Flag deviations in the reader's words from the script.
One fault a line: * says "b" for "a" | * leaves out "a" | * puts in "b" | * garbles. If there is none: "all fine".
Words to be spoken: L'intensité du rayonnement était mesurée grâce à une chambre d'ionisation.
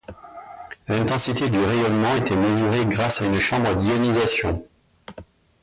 all fine